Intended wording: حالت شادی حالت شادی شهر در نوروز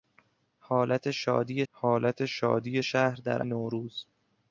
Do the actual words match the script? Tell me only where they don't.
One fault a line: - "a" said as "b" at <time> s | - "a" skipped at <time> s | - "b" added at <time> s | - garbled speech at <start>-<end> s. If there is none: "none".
none